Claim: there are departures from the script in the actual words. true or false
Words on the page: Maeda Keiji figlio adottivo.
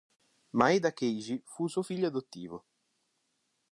true